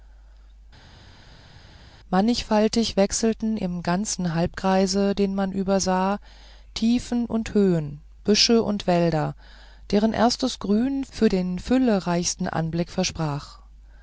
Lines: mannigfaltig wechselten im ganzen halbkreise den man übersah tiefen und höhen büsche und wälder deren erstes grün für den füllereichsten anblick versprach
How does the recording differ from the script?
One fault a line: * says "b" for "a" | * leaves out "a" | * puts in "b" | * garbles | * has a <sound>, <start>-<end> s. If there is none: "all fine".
all fine